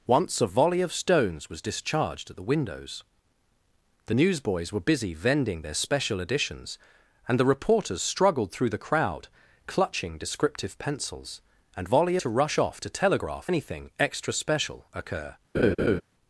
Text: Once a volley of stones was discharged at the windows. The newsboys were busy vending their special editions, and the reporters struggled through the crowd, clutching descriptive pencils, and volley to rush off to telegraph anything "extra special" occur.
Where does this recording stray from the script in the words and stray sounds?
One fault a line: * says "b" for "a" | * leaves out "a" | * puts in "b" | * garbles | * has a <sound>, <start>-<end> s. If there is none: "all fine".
* has a laugh, 15.5-16.0 s